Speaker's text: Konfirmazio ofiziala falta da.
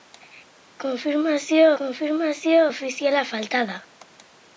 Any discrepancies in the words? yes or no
yes